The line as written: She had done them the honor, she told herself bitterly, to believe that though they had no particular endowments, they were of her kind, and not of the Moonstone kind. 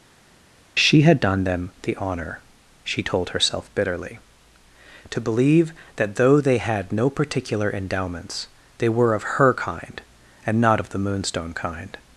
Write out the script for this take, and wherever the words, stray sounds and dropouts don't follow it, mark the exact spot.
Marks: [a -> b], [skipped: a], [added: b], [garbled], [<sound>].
She had done them the honor, she told herself bitterly, to believe that though they had no particular endowments, they were of her kind, and not of the Moonstone kind.